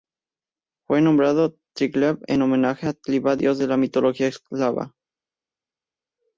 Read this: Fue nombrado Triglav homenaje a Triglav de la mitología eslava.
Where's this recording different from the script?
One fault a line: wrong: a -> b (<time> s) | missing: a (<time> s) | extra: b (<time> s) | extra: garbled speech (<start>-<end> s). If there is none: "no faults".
extra: en (2.3 s)
extra: dios (3.4 s)